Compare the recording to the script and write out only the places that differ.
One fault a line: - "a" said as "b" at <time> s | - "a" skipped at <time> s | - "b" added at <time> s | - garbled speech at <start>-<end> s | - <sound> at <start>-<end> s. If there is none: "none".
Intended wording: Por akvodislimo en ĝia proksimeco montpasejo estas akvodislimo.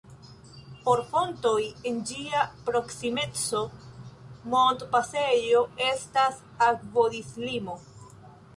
- "akvodislimo" said as "fontoj" at 1.1 s